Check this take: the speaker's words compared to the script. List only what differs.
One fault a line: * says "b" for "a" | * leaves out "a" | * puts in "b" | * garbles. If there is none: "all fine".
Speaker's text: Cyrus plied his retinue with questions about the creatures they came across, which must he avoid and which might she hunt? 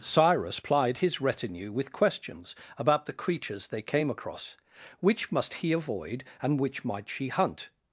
all fine